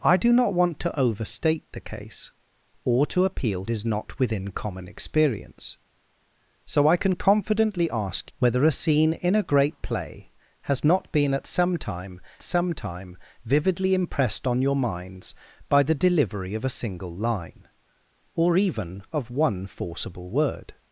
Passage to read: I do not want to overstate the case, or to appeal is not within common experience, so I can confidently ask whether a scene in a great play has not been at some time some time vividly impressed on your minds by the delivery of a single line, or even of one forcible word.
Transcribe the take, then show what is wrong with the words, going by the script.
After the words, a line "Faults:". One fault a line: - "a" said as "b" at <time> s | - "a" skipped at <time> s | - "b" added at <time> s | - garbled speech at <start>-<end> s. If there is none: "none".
I do not want to overstate the case, or to appeal is not within common experience, so I can confidently ask whether a scene in a great play has not been at some time some time vividly impressed on your minds by the delivery of a single line, or even of one forcible word.
Faults:
none